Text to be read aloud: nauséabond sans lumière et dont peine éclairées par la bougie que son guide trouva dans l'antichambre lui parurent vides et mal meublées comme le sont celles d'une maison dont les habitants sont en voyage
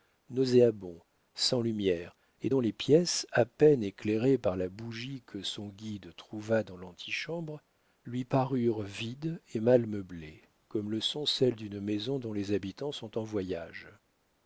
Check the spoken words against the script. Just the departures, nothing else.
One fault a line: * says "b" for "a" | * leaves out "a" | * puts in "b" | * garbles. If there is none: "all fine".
* puts in "les pièces à"